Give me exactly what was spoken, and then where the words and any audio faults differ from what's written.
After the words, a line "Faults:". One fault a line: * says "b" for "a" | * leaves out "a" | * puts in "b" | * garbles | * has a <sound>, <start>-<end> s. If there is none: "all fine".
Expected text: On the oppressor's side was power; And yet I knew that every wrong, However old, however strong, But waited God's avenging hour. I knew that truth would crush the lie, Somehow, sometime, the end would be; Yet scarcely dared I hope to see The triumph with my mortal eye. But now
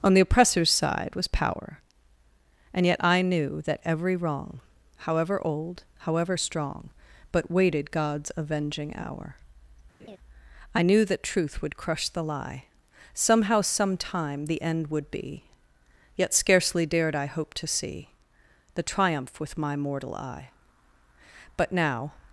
On the oppressor's side was power; And yet I knew that every wrong, However old, however strong, But waited God's avenging hour. I knew that truth would crush the lie, Somehow, sometime, the end would be; Yet scarcely dared I hope to see The triumph with my mortal eye. But now
Faults:
* has a laugh, 10.0-10.2 s